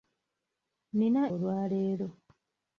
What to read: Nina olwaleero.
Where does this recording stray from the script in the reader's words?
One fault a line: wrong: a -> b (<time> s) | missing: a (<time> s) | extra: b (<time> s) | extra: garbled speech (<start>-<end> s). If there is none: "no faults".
no faults